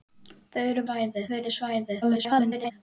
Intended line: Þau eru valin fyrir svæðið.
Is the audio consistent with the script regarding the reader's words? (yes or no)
no